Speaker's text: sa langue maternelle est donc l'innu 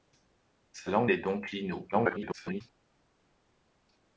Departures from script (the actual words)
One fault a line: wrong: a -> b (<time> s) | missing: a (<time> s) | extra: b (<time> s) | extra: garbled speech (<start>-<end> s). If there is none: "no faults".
missing: maternelle (1.1 s)
extra: garbled speech (1.9-2.6 s)